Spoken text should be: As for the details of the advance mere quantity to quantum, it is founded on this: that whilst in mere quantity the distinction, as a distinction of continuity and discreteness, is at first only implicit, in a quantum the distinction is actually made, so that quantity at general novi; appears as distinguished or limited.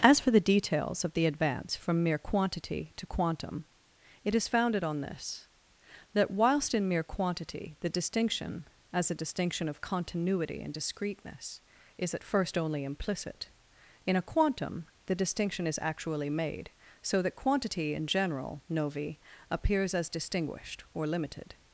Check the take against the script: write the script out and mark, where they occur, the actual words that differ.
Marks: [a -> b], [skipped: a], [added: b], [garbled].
As for the details of the advance [added: from] mere quantity to quantum, it is founded on this: that whilst in mere quantity the distinction, as a distinction of continuity and discreteness, is at first only implicit, in a quantum the distinction is actually made, so that quantity [at -> in] general novi; appears as distinguished or limited.